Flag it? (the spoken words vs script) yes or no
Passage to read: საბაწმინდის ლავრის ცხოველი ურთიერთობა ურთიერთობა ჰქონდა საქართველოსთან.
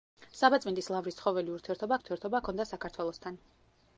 no